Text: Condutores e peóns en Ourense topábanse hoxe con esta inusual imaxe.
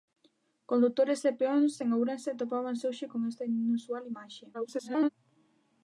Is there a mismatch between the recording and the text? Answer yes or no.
yes